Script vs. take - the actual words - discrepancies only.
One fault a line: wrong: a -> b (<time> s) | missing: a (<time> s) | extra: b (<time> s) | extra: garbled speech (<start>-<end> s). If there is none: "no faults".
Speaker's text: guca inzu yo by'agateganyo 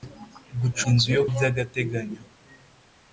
no faults